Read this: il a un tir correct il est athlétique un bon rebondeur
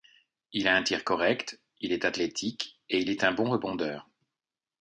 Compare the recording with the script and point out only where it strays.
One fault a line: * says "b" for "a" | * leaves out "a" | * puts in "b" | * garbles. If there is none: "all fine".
* puts in "et il est"